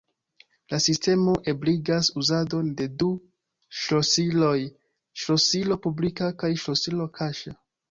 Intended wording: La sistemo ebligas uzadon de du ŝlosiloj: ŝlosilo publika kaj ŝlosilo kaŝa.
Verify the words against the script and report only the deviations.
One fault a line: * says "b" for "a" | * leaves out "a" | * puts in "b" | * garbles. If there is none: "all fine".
all fine